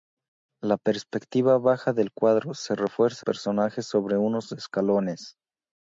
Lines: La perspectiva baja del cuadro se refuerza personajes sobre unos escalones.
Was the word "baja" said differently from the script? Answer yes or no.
no